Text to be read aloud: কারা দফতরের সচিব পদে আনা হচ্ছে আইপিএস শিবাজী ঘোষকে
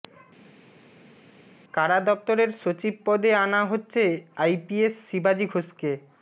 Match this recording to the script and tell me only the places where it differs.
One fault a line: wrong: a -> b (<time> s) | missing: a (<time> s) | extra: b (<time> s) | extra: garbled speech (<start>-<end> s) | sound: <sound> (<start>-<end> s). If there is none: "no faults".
no faults